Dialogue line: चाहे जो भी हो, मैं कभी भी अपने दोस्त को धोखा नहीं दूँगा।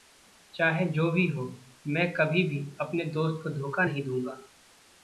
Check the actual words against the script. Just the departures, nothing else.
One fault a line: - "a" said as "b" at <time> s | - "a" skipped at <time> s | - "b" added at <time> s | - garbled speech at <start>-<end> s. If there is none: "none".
none